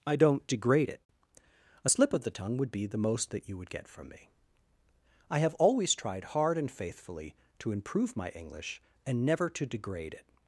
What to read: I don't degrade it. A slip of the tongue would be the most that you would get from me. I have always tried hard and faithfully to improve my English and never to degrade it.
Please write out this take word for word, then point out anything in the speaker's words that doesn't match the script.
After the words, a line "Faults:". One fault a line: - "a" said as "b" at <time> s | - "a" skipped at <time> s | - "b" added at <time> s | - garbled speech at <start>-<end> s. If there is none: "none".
I don't degrade it. A slip of the tongue would be the most that you would get from me. I have always tried hard and faithfully to improve my English and never to degrade it.
Faults:
none